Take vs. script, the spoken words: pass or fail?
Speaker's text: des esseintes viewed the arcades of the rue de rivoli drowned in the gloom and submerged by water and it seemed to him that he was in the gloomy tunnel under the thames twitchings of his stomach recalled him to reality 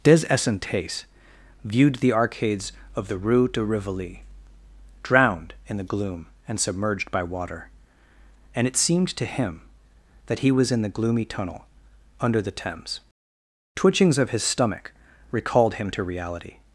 pass